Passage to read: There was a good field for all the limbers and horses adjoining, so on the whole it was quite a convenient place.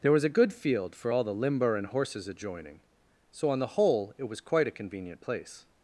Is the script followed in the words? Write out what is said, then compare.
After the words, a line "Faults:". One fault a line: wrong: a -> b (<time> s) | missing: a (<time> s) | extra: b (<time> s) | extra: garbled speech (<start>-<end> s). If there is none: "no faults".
There was a good field for all the limber and horses adjoining, so on the whole it was quite a convenient place.
Faults:
wrong: limbers -> limber (1.3 s)